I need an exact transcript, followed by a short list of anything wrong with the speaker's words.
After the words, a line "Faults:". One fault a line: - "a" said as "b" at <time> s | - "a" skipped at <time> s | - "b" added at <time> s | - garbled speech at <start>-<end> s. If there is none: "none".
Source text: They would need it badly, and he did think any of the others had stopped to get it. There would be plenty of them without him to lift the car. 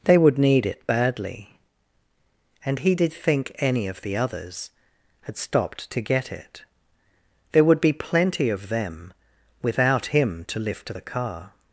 They would need it badly, and he did think any of the others had stopped to get it. There would be plenty of them without him to lift the car.
Faults:
none